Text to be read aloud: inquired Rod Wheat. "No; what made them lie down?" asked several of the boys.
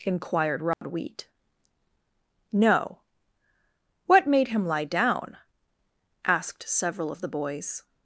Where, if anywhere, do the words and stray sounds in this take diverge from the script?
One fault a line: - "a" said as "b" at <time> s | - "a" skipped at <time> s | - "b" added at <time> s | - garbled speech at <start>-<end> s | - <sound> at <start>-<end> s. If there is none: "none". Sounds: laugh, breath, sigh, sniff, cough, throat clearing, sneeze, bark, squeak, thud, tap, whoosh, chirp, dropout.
- dropout at 0.7-0.8 s
- "them" said as "him" at 4.5 s